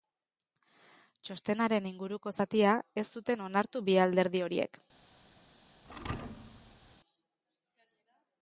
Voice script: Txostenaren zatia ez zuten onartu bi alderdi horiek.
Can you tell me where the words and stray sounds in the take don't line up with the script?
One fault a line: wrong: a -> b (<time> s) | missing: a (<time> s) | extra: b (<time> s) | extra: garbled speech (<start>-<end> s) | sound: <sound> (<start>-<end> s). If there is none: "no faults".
extra: inguruko (1.9 s)
sound: thud (5.8-7.0 s)